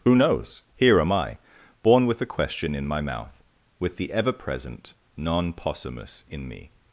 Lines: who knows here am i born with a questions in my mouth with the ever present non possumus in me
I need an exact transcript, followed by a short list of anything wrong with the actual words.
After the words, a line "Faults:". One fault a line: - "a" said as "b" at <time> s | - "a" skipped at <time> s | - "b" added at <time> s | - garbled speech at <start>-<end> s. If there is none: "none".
who knows here am i born with a question in my mouth with the ever present non possumus in me
Faults:
- "questions" said as "question" at 2.2 s